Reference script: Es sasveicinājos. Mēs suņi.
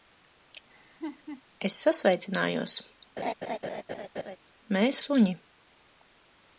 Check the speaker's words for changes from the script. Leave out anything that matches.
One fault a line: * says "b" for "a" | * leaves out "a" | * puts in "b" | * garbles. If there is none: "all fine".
all fine